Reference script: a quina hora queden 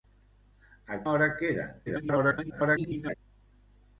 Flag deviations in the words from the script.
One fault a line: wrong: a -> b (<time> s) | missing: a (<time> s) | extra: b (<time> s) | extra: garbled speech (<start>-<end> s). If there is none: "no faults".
missing: quina (1.0 s)
extra: garbled speech (1.9-3.2 s)